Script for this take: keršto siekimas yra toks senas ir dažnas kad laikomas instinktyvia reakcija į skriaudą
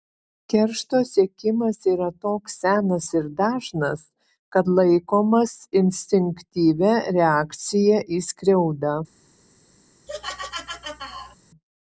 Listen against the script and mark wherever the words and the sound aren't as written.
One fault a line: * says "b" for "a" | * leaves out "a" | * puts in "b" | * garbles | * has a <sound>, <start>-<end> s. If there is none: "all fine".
* has a laugh, 10.1-11.4 s